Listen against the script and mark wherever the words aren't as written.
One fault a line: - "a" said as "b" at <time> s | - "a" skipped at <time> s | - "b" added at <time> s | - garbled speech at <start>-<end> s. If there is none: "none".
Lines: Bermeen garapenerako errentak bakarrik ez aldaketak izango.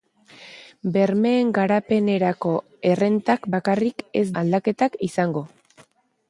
none